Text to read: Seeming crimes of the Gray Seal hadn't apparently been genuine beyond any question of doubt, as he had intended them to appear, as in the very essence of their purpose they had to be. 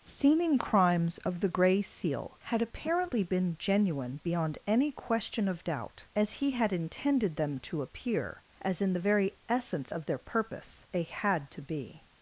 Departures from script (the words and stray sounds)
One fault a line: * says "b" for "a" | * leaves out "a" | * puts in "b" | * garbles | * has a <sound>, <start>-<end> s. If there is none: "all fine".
* says "had" for "hadn't"